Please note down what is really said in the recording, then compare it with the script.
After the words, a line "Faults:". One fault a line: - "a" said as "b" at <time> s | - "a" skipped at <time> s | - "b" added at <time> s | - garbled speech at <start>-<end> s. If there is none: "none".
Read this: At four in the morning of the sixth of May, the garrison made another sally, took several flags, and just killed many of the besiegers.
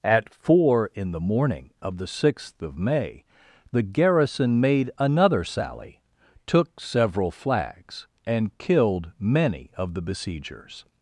At four in the morning of the sixth of May, the garrison made another sally, took several flags, and killed many of the besiegers.
Faults:
- "just" skipped at 8.6 s